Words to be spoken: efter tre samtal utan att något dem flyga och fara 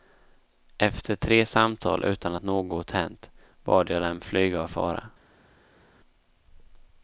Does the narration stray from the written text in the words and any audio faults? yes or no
yes